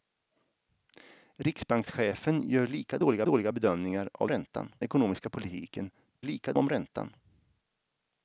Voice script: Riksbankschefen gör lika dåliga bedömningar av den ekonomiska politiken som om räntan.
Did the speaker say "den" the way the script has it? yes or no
no